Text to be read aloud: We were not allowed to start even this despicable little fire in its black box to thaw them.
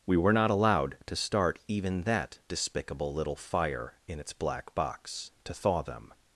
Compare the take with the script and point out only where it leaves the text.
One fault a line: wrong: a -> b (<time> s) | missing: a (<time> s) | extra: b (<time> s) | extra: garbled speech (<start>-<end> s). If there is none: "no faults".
wrong: this -> that (2.0 s)